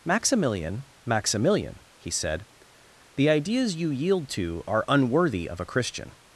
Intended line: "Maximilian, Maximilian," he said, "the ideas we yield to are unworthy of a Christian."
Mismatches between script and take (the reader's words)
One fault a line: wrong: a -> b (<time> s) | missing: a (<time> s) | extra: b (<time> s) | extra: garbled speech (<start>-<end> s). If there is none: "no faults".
wrong: we -> you (3.8 s)